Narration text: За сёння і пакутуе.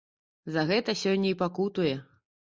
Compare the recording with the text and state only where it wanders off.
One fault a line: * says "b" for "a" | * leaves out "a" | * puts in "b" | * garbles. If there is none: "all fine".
* puts in "гэта"